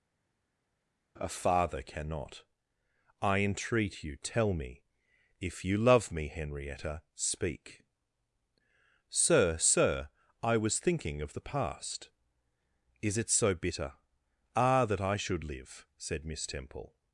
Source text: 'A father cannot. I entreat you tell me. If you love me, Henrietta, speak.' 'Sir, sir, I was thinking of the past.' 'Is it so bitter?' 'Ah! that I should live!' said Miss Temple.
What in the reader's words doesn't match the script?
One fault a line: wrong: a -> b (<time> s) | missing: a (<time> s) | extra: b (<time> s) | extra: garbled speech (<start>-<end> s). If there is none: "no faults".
no faults